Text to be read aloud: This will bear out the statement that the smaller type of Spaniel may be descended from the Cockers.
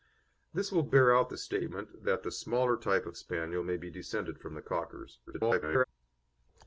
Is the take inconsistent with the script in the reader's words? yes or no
yes